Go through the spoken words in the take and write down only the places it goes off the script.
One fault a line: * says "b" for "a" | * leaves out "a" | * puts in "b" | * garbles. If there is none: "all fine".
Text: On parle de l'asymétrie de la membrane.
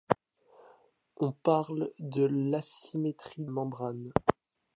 * leaves out "de la"